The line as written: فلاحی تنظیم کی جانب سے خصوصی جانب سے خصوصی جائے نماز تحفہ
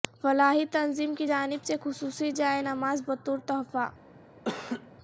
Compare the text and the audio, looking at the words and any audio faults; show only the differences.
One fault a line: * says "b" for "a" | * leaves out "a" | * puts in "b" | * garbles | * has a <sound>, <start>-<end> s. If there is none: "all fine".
* leaves out "جانب سے خصوصی"
* puts in "بطور"
* has a laugh, 4.5-4.9 s